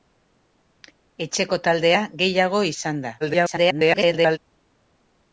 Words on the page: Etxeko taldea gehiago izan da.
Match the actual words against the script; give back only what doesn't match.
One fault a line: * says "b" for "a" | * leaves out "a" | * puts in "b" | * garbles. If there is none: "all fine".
* garbles